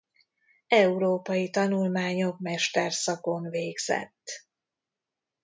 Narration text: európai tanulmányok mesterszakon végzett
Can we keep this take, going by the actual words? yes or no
yes